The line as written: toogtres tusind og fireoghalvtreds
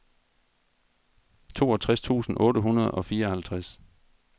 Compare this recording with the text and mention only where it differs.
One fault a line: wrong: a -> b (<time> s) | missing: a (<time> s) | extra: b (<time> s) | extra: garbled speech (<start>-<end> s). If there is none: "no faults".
extra: otte hundrede (2.4 s)